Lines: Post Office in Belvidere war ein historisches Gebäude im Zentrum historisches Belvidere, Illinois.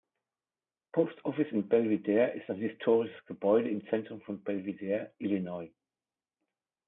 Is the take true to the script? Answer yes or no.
no